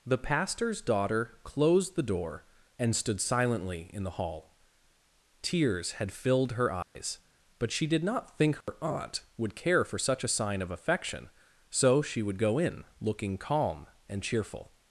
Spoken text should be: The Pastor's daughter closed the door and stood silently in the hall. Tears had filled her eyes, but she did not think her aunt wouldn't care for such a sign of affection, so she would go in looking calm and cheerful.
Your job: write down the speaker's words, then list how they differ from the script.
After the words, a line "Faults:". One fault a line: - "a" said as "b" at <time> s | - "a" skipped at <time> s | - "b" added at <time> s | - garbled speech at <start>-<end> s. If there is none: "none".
The Pastor's daughter closed the door and stood silently in the hall. Tears had filled her eyes, but she did not think her aunt would care for such a sign of affection, so she would go in looking calm and cheerful.
Faults:
- "wouldn't" said as "would" at 9.4 s